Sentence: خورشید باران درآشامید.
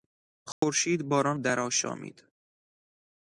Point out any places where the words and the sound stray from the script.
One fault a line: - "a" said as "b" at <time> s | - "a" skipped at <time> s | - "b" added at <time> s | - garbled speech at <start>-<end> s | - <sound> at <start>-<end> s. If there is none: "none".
- dropout at 0.5-0.6 s